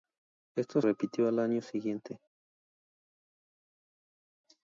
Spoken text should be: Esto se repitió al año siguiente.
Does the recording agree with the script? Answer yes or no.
no